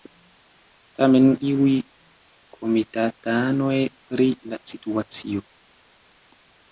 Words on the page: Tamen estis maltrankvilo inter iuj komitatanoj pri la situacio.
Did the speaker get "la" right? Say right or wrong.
right